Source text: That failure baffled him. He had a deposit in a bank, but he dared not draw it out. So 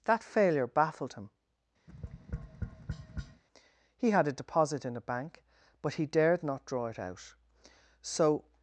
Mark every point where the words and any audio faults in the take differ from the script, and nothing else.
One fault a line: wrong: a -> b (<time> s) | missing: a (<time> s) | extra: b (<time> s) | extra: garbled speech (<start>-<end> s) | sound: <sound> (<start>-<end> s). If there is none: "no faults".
sound: tap (1.9-3.4 s)